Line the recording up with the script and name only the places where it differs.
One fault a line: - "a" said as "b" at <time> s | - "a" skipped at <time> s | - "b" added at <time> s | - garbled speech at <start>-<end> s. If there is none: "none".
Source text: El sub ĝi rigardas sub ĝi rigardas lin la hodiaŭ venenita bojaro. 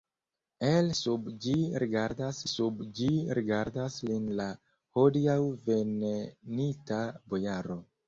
none